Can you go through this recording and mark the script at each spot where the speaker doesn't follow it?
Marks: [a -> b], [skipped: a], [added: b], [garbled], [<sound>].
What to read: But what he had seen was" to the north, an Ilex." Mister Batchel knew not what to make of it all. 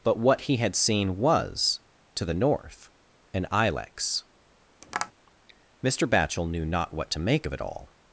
But what he had seen was" to the north, an Ilex." [tap] Mister Batchel knew not what to make of it all.